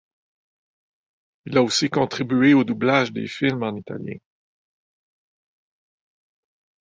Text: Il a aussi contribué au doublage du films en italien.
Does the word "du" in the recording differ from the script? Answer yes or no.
yes